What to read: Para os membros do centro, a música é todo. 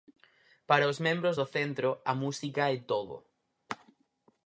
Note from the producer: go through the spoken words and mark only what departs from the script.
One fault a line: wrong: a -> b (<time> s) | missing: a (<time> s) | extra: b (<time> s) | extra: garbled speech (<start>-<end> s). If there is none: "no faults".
no faults